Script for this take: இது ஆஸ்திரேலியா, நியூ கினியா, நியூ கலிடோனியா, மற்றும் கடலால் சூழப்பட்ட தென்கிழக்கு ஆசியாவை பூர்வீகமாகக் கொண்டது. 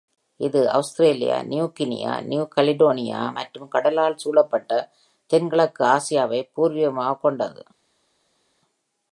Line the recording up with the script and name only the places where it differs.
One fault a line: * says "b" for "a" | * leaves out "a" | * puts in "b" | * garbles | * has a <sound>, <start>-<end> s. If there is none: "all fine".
all fine